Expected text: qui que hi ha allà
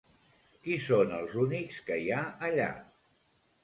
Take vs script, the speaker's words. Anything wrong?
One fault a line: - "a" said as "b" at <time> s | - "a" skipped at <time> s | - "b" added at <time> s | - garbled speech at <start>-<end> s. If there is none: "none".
- "són els únics" added at 0.8 s